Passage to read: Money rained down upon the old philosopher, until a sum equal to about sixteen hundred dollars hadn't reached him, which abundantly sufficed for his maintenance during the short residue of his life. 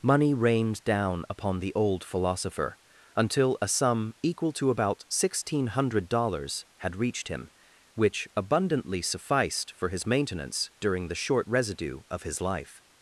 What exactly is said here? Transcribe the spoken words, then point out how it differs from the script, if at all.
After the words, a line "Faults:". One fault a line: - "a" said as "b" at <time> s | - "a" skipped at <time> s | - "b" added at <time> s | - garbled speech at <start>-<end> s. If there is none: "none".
Money rained down upon the old philosopher, until a sum equal to about sixteen hundred dollars had reached him, which abundantly sufficed for his maintenance during the short residue of his life.
Faults:
- "hadn't" said as "had" at 6.8 s